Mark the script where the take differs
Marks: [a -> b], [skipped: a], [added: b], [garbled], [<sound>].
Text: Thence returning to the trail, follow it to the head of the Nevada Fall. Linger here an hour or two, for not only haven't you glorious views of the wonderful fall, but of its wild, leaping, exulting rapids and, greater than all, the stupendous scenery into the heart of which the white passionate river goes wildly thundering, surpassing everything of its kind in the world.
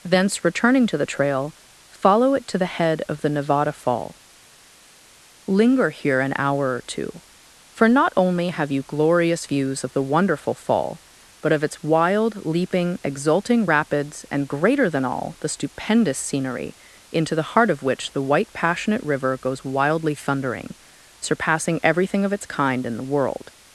Thence returning to the trail, follow it to the head of the Nevada Fall. Linger here an hour or two, for not only [haven't -> have] you glorious views of the wonderful fall, but of its wild, leaping, exulting rapids and, greater than all, the stupendous scenery into the heart of which the white passionate river goes wildly thundering, surpassing everything of its kind in the world.